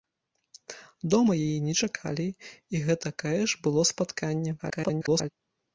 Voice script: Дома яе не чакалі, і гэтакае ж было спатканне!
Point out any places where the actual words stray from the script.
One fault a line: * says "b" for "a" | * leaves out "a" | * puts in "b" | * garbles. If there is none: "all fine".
* garbles